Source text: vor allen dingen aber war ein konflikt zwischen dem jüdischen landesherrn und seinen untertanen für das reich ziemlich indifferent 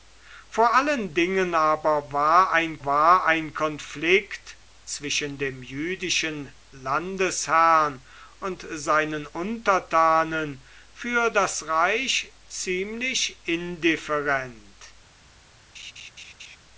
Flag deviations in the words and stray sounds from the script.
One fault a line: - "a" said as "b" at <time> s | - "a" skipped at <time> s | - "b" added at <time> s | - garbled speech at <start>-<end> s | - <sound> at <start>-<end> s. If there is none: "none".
- "war ein" added at 2.8 s
- laugh at 15.7-16.6 s